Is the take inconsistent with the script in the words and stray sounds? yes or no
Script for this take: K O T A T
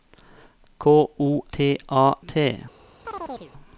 yes